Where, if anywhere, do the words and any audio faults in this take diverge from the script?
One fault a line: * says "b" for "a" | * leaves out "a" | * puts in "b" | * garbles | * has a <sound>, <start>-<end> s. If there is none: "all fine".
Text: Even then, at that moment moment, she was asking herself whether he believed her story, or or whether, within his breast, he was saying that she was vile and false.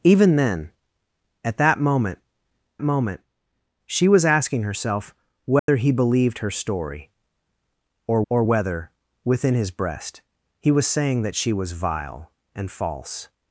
* has a dropout, 5.6-5.7 s